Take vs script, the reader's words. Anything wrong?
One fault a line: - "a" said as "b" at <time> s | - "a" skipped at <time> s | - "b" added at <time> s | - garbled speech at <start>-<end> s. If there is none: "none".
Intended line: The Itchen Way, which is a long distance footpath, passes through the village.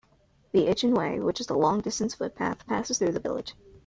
none